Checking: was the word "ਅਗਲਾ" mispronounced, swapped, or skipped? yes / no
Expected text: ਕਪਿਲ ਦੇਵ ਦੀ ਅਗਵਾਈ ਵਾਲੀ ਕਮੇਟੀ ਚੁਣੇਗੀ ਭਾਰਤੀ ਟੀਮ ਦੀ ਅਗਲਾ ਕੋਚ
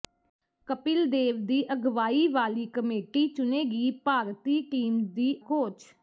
yes